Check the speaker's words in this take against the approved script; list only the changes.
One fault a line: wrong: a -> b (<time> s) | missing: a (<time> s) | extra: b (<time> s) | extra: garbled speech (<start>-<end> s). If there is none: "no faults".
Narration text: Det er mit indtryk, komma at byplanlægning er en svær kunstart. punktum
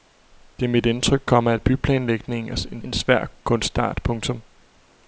extra: en (2.8 s)